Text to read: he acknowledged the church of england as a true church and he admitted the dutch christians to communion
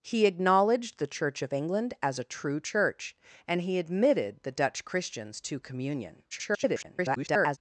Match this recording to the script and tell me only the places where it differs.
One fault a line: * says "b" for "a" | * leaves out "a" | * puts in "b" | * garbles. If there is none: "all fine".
* garbles